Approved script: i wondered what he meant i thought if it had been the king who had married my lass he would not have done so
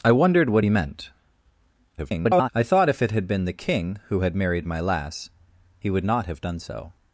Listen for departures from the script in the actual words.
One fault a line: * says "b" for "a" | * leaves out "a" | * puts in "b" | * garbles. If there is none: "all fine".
* garbles